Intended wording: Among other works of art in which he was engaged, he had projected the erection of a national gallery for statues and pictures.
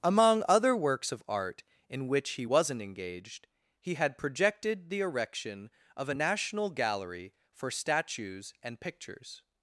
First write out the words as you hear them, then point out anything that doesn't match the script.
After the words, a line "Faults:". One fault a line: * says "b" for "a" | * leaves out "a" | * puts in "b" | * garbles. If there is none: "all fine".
Among other works of art in which he wasn't engaged, he had projected the erection of a national gallery for statues and pictures.
Faults:
* says "wasn't" for "was"